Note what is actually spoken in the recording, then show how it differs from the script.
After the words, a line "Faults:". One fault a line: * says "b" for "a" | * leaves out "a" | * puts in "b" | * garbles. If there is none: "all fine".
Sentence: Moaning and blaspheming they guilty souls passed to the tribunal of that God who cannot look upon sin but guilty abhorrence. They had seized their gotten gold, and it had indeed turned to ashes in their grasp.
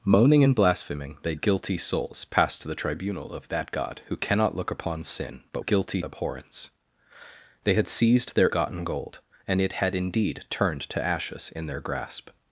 Moaning and blaspheming they guilty souls passed to the tribunal of that God who cannot look upon sin but guilty abhorrence. They had seized their gotten gold, and it had indeed turned to ashes in their grasp.
Faults:
all fine